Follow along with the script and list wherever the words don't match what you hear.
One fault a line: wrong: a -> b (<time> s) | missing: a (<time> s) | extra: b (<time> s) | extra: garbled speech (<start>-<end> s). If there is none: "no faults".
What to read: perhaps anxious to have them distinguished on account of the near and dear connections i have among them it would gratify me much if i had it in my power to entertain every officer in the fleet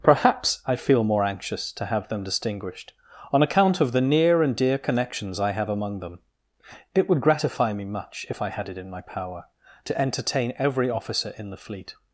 extra: i feel more (0.7 s)